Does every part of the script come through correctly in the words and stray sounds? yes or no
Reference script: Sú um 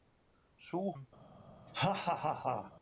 no